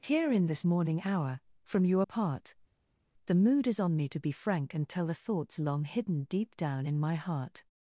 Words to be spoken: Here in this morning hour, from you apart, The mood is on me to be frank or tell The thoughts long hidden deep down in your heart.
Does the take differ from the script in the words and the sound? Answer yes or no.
yes